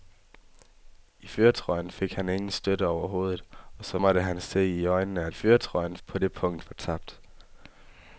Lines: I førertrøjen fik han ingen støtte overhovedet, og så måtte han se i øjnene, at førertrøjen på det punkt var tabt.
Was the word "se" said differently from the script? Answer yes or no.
no